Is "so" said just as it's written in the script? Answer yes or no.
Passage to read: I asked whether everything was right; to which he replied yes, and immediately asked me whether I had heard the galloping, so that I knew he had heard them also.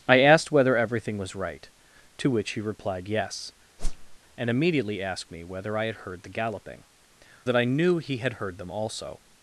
no